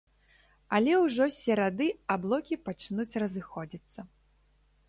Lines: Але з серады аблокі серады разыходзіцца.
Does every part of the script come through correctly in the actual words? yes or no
no